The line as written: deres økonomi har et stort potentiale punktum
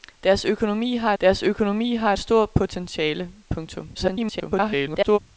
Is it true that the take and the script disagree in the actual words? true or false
true